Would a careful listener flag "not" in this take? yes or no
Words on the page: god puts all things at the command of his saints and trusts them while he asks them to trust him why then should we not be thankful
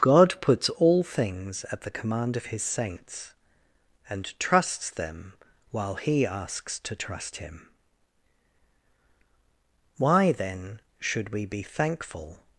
yes